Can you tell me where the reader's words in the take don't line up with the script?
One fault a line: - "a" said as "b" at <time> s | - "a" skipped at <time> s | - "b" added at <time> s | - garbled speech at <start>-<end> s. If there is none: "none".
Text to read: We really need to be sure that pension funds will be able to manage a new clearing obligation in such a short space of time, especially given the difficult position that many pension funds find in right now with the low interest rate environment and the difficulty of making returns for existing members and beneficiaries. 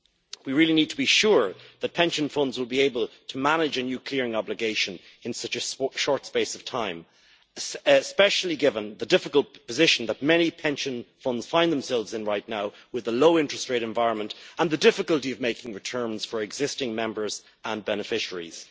- "themselves" added at 11.7 s